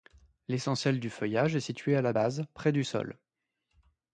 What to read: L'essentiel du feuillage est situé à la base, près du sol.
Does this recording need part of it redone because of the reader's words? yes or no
no